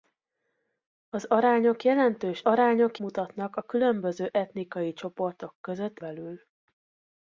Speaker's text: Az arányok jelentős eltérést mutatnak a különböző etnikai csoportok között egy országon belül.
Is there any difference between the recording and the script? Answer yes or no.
yes